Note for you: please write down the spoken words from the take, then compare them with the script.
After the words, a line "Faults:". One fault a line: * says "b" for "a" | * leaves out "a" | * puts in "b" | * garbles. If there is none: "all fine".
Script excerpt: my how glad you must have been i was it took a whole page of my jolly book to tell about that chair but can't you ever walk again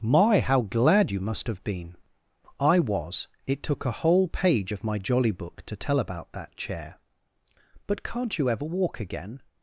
my how glad you must have been i was it took a whole page of my jolly book to tell about that chair but can't you ever walk again
Faults:
all fine